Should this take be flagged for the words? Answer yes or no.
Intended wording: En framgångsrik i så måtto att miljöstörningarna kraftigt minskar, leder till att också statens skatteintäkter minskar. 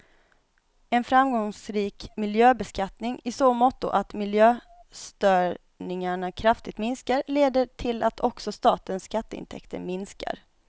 yes